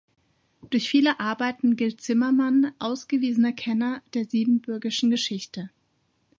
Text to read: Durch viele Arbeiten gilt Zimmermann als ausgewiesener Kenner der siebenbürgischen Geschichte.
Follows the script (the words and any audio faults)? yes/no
no